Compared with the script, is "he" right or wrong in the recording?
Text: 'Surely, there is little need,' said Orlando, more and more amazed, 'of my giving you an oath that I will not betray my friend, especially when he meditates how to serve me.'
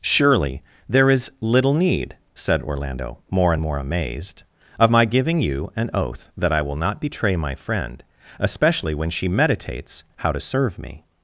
wrong